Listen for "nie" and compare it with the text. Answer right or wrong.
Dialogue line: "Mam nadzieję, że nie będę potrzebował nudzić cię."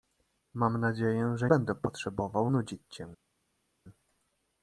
wrong